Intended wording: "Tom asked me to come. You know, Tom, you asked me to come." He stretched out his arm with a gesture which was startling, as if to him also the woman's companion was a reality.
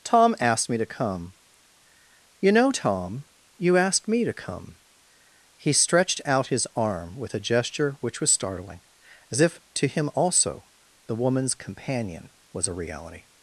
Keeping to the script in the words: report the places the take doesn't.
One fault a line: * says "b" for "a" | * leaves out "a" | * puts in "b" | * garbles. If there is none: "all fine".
all fine